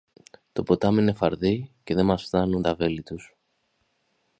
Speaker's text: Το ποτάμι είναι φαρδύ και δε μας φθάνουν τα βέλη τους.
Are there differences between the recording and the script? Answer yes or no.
no